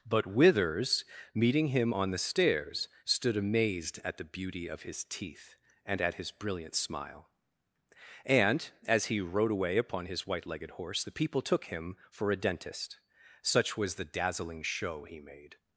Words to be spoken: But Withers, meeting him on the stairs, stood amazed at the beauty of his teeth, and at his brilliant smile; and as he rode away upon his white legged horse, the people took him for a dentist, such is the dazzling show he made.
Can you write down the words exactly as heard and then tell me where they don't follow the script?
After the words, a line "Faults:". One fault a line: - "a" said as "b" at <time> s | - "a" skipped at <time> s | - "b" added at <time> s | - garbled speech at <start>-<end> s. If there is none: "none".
But Withers, meeting him on the stairs, stood amazed at the beauty of his teeth, and at his brilliant smile; and as he rode away upon his white legged horse, the people took him for a dentist, such was the dazzling show he made.
Faults:
- "is" said as "was" at 13.8 s